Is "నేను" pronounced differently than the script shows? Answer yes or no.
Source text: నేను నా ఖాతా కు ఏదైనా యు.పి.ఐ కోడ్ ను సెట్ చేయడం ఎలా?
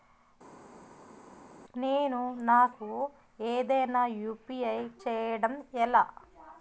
no